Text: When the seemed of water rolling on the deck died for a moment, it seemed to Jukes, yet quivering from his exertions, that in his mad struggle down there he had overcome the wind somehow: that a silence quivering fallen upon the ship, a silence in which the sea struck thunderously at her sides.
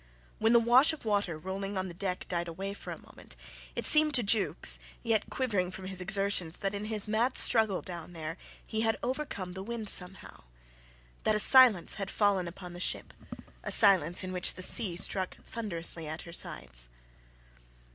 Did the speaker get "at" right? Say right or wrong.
right